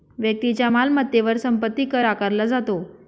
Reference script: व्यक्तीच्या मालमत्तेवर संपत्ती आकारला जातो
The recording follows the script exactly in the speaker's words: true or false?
false